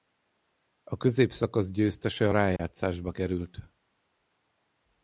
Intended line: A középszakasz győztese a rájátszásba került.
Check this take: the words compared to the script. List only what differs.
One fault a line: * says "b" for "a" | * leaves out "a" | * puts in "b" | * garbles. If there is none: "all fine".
all fine